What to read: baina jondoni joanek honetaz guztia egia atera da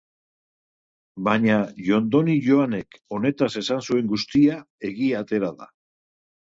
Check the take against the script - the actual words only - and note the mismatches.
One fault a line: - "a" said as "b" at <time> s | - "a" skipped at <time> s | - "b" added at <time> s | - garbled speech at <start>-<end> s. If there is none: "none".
- "esan zuen" added at 3.6 s